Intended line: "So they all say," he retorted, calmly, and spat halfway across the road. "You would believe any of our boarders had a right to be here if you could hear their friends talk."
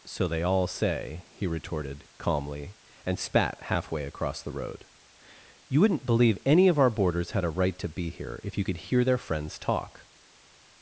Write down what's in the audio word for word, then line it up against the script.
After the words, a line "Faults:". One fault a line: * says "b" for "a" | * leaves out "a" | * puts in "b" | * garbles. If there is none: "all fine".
"So they all say," he retorted, calmly, and spat halfway across the road. "You wouldn't believe any of our boarders had a right to be here if you could hear their friends talk."
Faults:
* says "wouldn't" for "would"